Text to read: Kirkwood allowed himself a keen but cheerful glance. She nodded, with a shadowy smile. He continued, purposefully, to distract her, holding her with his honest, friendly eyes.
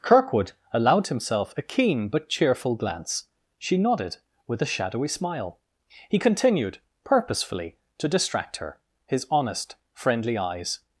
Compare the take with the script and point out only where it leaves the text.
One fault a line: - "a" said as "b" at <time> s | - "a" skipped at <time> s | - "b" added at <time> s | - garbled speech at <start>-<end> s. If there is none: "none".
- "holding her with" skipped at 8.8 s